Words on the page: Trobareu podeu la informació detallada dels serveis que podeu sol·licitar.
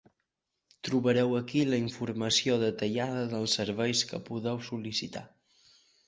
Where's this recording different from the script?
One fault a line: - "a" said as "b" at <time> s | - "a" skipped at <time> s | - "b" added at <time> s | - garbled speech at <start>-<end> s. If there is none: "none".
- "podeu" said as "aquí" at 1.4 s